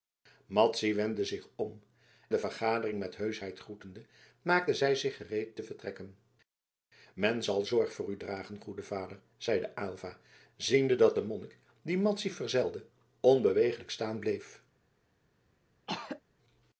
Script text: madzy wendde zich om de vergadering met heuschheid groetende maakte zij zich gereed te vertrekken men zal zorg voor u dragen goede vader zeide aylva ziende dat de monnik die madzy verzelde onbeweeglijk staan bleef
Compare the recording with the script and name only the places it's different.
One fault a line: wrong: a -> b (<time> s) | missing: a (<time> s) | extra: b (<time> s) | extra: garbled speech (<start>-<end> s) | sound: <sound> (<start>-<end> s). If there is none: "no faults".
sound: throat clearing (15.9-16.2 s)